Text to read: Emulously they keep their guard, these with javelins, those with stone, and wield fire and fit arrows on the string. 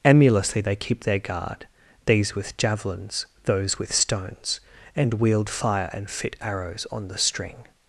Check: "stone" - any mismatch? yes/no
yes